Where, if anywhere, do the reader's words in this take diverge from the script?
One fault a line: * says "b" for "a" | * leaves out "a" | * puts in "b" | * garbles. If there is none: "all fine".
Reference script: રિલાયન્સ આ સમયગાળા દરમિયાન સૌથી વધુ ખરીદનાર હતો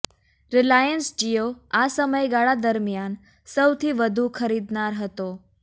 * puts in "જિયો"